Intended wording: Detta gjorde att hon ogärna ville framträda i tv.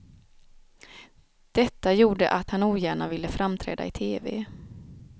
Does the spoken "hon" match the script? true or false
false